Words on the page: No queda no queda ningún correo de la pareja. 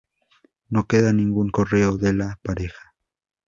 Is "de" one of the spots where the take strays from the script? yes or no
no